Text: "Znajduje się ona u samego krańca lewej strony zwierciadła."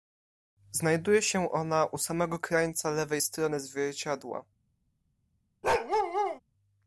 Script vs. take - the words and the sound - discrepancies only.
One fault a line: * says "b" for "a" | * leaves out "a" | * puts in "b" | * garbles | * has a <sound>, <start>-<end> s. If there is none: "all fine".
* has a bark, 5.6-6.4 s